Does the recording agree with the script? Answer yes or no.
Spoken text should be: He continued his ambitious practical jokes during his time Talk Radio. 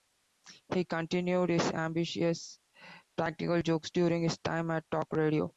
no